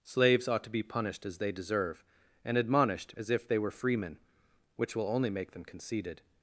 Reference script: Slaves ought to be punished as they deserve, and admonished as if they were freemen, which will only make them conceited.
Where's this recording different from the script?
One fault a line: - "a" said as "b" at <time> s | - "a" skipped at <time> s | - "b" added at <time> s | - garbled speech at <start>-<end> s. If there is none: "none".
none